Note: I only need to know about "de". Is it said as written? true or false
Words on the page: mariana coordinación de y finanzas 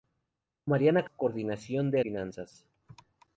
true